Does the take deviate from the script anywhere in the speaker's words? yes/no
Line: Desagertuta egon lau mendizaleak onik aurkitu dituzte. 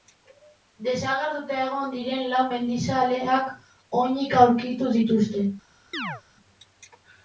yes